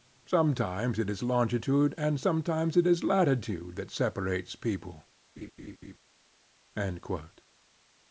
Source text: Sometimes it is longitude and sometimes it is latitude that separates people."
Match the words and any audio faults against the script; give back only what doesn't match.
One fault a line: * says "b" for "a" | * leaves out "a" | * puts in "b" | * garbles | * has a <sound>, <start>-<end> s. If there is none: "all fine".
* has a laugh, 5.4-6.0 s